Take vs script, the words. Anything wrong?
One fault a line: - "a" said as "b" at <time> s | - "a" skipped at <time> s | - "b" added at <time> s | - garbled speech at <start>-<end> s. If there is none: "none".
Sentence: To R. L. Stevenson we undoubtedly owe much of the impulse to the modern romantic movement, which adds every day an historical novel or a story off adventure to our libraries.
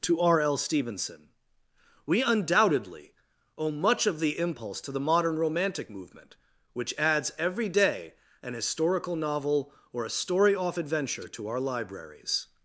none